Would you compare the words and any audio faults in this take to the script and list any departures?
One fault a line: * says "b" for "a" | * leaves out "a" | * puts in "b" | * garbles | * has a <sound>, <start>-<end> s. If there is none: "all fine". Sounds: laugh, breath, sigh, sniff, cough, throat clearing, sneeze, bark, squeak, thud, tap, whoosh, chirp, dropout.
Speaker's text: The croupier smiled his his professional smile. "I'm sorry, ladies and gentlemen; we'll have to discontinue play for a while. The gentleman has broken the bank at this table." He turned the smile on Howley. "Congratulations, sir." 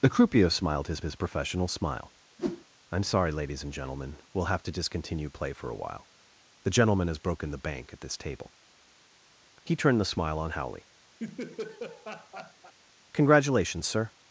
* has a whoosh, 2.4-2.7 s
* has a laugh, 11.2-12.7 s